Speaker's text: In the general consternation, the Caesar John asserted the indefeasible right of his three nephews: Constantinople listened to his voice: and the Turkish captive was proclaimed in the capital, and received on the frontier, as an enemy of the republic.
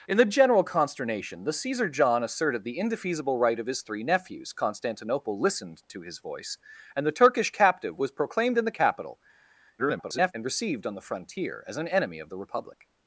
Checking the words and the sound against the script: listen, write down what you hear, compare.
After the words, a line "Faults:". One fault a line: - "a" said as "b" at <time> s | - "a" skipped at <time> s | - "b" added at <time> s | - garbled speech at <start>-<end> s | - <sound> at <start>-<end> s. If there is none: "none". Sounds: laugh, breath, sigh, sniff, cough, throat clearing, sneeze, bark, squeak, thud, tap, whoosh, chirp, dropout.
In the general consternation, the Caesar John asserted the indefeasible right of his three nephews: Constantinople listened to his voice: and the Turkish captive was proclaimed in the capital, [garbled] and received on the frontier, as an enemy of the republic.
Faults:
- garbled speech at 9.8-10.3 s